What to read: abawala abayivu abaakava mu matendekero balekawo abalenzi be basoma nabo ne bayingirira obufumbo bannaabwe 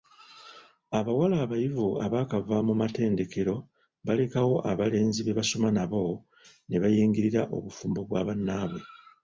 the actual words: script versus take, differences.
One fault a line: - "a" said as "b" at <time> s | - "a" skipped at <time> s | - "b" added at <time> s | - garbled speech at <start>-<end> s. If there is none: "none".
- "bwa" added at 8.1 s